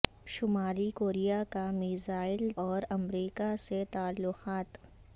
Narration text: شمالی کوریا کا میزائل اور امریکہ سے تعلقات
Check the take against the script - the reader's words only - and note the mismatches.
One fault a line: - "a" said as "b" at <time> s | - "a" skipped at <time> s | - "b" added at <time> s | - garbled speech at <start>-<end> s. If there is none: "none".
none